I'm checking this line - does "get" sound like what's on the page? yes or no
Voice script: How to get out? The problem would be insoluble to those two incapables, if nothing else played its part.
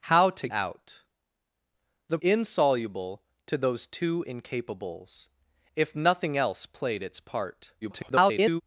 no